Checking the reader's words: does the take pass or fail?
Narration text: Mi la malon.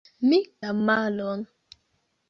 pass